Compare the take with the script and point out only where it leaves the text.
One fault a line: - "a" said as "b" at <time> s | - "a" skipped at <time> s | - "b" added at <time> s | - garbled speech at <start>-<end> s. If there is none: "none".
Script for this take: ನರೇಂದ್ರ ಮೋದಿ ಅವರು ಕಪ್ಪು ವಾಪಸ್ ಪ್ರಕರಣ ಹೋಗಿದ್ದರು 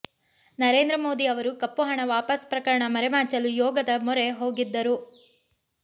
- "ಹಣ" added at 1.8 s
- "ಮರೆಮಾಚಲು ಯೋಗದ ಮೊರೆ" added at 2.9 s